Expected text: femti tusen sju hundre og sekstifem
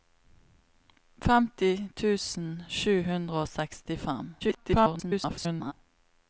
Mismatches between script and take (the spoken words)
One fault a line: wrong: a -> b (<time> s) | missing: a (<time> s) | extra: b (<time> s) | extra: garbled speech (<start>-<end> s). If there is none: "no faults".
extra: garbled speech (4.4-5.7 s)